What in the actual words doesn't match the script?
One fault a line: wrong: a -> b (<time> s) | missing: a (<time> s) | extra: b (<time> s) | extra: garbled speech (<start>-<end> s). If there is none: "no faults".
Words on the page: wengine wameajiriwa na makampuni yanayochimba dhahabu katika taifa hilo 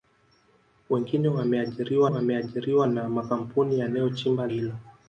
extra: wameajiriwa (2.0 s)
missing: dhahabu katika taifa (4.5 s)